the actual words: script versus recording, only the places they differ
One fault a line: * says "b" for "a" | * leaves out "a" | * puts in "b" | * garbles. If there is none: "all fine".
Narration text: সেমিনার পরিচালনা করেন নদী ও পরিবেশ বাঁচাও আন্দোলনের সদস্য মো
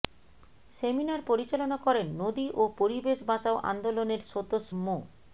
all fine